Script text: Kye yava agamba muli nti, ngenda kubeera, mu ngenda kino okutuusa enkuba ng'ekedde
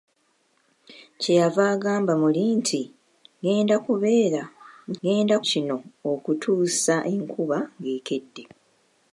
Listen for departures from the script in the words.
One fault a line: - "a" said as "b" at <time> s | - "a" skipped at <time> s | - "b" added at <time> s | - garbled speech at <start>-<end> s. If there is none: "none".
none